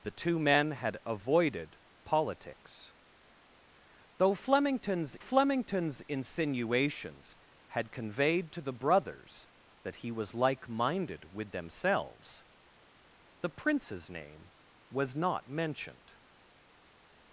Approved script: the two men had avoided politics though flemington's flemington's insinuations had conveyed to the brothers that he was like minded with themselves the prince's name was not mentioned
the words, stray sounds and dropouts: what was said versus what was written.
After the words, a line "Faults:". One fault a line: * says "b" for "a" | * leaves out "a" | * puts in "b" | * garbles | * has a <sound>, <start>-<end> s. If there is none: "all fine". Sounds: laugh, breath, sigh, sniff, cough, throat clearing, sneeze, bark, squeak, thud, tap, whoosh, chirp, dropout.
the two men had avoided politics though flemington's flemington's insinuations had conveyed to the brothers that he was like minded with themselves the prince's name was not mentioned
Faults:
all fine